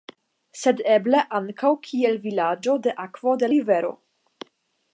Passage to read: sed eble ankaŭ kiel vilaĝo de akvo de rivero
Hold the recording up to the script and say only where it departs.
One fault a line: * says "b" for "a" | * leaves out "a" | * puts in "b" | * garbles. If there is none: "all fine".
all fine